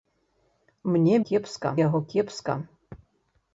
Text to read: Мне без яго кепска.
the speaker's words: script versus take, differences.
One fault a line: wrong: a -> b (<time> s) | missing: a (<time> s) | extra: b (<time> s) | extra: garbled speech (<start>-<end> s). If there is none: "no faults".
wrong: без -> кепска (1.3 s)